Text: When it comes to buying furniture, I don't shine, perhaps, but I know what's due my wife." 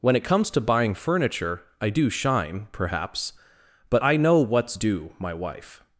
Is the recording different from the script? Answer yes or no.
yes